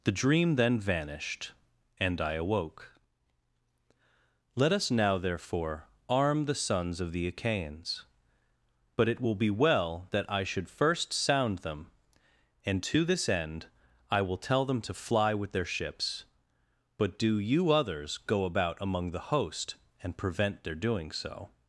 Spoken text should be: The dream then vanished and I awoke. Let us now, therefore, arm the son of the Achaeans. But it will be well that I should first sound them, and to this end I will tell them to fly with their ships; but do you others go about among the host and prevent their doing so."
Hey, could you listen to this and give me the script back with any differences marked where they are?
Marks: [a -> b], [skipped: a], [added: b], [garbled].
The dream then vanished and I awoke. Let us now, therefore, arm the [son -> sons] of the Achaeans. But it will be well that I should first sound them, and to this end I will tell them to fly with their ships; but do you others go about among the host and prevent their doing so."